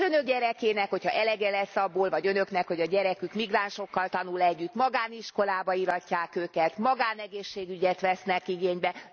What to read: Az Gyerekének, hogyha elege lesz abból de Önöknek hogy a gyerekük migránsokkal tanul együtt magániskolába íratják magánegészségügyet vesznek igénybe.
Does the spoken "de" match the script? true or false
false